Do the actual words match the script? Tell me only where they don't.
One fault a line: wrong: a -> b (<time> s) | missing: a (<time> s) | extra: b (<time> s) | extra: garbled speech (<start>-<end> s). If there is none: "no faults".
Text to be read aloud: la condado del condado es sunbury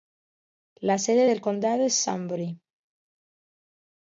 wrong: condado -> sede (1.0 s)